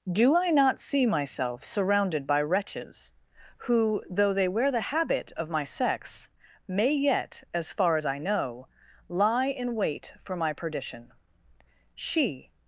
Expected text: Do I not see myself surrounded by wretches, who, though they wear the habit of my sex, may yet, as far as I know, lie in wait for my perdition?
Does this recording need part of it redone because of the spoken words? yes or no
yes